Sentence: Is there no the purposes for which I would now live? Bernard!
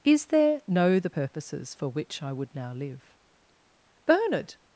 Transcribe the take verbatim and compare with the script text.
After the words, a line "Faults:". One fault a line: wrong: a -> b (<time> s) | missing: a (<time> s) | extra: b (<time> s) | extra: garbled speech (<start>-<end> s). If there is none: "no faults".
Is there no the purposes for which I would now live? Bernard!
Faults:
no faults